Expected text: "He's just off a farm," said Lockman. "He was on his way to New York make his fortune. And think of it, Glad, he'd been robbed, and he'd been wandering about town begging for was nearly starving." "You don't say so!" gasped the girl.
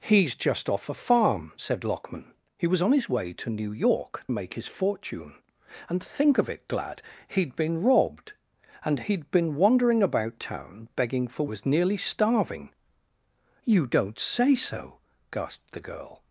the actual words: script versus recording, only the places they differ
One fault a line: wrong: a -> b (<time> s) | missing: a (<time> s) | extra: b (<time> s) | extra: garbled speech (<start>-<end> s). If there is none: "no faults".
no faults